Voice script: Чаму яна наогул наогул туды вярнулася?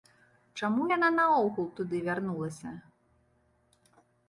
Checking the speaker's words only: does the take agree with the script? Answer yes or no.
no